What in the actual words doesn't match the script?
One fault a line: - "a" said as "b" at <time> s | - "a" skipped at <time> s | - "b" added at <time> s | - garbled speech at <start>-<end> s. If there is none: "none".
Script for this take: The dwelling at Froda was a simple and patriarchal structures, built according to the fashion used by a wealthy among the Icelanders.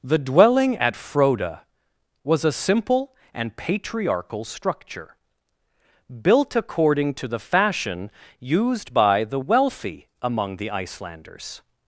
- "structures" said as "structure" at 4.5 s
- "a" said as "the" at 9.2 s